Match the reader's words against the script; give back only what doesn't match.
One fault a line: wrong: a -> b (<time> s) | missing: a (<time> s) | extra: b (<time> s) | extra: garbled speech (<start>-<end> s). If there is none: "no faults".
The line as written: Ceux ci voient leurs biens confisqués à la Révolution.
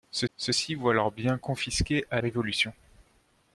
extra: ceux (0.3 s)
missing: la (2.2 s)